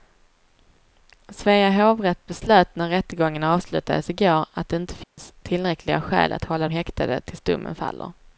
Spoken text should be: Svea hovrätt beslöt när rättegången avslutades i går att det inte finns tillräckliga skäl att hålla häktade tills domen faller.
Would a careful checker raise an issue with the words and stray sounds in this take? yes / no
yes